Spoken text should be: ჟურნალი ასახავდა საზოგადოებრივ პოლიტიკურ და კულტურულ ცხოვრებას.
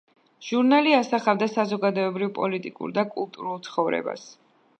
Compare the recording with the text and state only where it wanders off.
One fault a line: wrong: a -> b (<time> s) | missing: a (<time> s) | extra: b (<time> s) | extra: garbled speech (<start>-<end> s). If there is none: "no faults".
no faults